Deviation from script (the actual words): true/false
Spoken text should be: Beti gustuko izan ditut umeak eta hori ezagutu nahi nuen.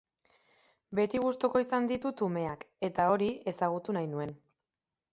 false